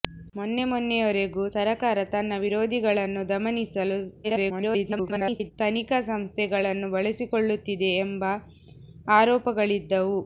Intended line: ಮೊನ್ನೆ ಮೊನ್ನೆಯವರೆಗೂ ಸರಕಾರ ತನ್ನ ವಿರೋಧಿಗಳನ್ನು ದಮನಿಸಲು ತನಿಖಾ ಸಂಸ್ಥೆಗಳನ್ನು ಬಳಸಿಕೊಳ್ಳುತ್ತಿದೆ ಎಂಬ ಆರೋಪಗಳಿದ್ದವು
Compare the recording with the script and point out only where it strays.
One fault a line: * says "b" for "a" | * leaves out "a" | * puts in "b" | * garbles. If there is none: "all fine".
* garbles